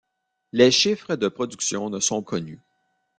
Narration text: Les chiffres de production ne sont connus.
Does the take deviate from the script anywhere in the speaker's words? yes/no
no